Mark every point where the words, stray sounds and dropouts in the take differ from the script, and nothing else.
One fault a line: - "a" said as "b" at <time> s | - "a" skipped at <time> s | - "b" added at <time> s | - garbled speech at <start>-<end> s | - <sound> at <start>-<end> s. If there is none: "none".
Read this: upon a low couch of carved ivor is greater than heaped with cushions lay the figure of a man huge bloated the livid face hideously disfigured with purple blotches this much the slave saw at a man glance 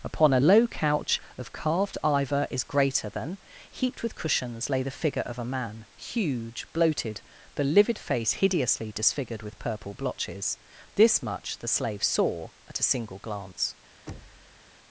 - "man" said as "single" at 12.8 s
- thud at 14.1-14.6 s